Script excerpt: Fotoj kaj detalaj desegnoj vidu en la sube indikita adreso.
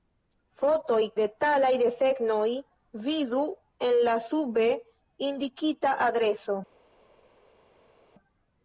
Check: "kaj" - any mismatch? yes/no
yes